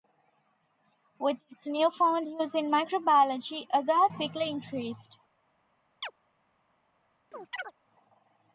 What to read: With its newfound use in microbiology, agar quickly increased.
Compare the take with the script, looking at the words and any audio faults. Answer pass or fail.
fail